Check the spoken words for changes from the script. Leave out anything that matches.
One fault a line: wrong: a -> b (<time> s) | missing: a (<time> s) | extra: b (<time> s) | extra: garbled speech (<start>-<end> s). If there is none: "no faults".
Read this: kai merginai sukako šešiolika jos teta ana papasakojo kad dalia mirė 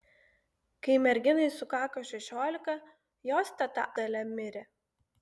missing: ana papasakojo kad (3.9 s)